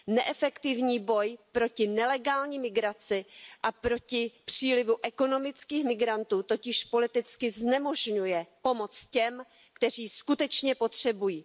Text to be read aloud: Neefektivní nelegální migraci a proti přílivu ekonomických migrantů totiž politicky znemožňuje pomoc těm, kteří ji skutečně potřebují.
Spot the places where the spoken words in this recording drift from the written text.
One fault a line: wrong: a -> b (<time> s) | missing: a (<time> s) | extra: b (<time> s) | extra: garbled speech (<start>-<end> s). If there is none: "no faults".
extra: boj proti (1.0 s)